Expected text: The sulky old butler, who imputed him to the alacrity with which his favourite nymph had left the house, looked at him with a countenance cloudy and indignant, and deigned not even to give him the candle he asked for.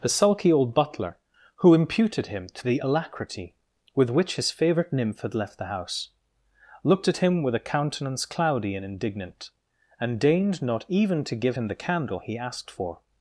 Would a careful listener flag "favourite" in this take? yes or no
no